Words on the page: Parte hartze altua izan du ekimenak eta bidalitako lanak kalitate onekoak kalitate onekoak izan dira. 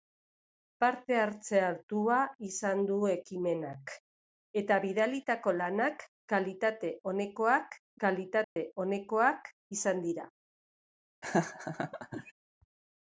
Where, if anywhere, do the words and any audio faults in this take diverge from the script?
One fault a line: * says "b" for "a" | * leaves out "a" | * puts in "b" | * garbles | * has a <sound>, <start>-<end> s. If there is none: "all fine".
* has a dropout, 8.4-8.6 s
* has a laugh, 11.2-12.3 s